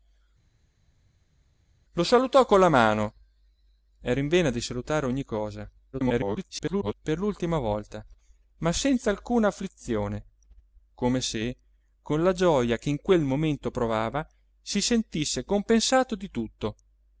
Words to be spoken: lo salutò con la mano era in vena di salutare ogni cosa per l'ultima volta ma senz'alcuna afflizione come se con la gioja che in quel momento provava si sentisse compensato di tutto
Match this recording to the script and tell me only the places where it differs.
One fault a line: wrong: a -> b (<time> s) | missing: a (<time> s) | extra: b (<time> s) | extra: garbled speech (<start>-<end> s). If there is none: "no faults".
extra: garbled speech (5.9-6.9 s)